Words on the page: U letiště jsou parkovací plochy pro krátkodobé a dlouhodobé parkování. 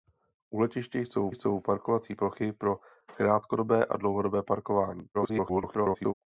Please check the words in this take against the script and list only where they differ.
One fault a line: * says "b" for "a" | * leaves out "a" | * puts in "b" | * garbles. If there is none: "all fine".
* puts in "jsou"
* garbles